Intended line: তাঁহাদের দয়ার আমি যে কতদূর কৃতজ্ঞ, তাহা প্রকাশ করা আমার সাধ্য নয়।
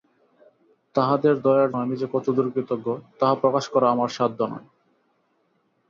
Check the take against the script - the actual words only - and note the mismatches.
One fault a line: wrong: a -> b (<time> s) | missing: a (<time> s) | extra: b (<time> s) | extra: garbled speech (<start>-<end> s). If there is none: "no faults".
no faults